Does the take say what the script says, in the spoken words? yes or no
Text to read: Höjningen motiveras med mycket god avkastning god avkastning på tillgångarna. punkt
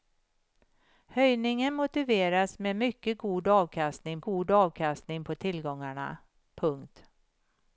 yes